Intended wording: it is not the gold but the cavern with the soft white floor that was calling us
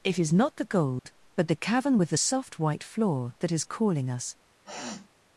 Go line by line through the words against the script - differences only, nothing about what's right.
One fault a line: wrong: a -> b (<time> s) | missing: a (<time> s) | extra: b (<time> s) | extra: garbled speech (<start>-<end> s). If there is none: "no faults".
wrong: was -> is (3.5 s)